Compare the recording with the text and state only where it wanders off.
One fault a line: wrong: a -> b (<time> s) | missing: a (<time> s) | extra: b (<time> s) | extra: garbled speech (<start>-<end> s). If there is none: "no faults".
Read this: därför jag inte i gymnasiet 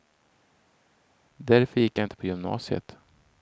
extra: gick (1.8 s)
wrong: i -> på (2.2 s)